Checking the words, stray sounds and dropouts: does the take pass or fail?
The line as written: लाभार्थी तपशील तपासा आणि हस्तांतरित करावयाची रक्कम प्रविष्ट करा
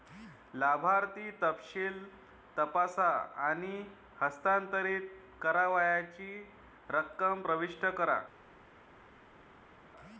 pass